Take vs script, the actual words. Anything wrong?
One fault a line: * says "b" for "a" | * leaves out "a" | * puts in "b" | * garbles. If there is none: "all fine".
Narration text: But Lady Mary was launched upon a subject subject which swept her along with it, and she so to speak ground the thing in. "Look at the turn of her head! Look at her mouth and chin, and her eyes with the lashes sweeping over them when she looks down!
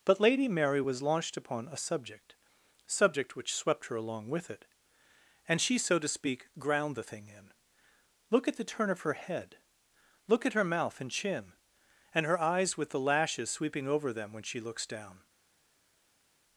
all fine